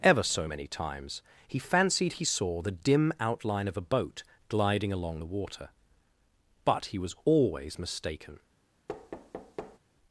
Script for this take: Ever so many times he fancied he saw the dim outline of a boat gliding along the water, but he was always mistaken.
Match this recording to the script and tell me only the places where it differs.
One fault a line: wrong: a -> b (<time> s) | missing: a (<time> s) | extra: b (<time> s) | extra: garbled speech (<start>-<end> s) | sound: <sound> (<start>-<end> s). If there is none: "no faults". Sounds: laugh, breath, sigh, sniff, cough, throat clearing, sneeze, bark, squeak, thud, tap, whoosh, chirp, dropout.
sound: thud (8.9-9.8 s)